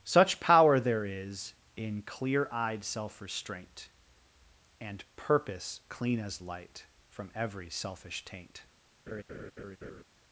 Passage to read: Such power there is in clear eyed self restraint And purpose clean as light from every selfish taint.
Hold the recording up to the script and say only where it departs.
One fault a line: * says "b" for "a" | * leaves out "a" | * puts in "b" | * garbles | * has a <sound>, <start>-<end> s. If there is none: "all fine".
* has a laugh, 9.1-10.0 s